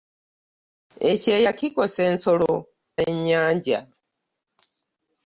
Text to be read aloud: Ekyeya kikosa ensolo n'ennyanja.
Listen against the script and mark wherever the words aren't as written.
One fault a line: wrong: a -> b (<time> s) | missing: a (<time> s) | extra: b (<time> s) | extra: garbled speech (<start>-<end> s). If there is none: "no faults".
no faults